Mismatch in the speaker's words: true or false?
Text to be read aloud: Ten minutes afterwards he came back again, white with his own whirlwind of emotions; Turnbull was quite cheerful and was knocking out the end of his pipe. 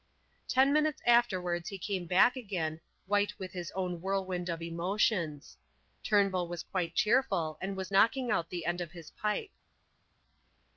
false